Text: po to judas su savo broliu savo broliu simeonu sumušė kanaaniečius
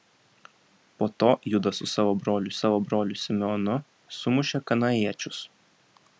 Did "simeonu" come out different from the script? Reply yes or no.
no